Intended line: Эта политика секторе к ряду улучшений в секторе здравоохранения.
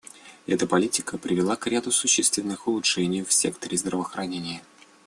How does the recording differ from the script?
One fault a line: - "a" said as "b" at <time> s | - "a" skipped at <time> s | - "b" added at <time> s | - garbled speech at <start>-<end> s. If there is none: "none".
- "секторе" said as "привела" at 1.2 s
- "существенных" added at 1.9 s